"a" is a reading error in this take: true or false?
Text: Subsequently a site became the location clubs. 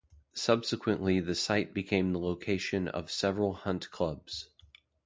true